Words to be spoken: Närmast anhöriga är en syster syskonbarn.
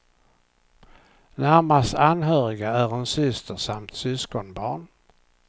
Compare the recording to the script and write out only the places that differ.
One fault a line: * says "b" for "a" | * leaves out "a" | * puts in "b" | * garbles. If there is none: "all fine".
* puts in "samt"